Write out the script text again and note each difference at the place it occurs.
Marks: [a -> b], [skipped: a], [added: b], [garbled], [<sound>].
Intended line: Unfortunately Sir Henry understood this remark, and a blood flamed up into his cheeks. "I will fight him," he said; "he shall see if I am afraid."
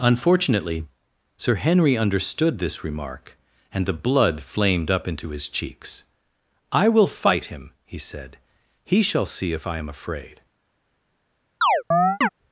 Unfortunately Sir Henry understood this remark, and [a -> the] blood flamed up into his cheeks. "I will fight him," he said; "he shall see if I am afraid." [chirp]